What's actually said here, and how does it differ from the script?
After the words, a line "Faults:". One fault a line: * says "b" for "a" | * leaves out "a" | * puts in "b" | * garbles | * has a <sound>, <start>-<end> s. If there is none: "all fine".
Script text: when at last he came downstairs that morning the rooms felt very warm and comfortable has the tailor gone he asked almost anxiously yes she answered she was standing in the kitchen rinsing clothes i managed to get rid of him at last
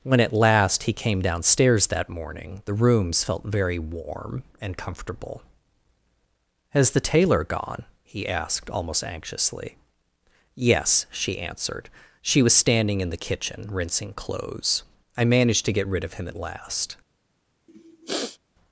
when at last he came downstairs that morning the rooms felt very warm and comfortable has the tailor gone he asked almost anxiously yes she answered she was standing in the kitchen rinsing clothes i managed to get rid of him at last
Faults:
* has a sniff, 17.7-18.4 s